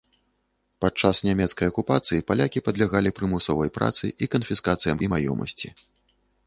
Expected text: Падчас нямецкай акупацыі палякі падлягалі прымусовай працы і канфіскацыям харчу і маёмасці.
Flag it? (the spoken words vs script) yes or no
yes